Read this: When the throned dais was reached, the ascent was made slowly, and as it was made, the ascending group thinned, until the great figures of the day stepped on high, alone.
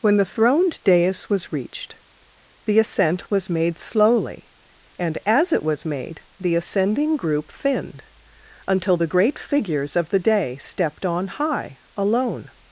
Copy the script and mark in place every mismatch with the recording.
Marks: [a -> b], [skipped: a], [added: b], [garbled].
When the throned dais was reached, the ascent was made slowly, and as it was made, the ascending group thinned, until the great figures of the day stepped on high, alone.